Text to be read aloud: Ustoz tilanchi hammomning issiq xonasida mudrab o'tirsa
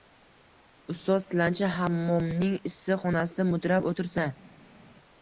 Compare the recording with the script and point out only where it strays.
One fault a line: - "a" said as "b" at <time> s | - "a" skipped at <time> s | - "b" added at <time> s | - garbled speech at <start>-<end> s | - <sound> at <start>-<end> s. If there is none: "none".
none